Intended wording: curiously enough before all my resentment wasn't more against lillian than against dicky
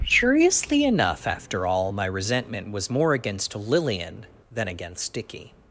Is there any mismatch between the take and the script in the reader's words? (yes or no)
yes